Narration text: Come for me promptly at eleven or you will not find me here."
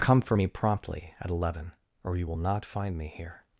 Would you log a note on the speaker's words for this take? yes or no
no